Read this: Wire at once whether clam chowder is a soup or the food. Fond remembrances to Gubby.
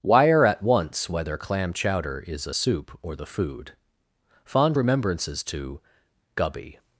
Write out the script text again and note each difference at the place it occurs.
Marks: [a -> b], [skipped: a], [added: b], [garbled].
Wire at once whether clam chowder is a soup or the food. Fond remembrances to Gubby.